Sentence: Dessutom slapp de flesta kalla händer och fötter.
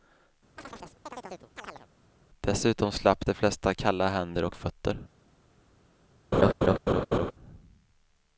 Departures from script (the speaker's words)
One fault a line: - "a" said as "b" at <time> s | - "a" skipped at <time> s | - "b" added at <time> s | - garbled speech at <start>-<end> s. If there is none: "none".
none